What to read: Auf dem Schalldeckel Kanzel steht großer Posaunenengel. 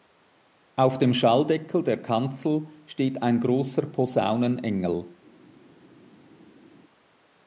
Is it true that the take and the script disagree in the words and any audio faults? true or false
true